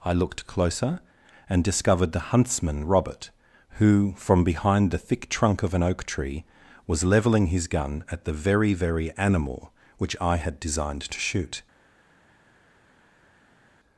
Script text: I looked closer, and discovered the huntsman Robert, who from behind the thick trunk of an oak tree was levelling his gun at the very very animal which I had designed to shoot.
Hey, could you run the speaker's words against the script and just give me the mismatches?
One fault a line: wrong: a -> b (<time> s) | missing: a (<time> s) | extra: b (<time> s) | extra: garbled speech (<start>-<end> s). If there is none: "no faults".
no faults